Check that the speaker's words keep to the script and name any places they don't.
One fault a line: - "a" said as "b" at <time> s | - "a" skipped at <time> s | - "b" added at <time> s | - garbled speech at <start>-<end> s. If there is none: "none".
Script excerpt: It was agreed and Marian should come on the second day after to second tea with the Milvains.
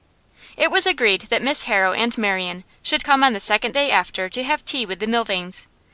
- "that Miss Harrow" added at 1.3 s
- "second" said as "have" at 4.4 s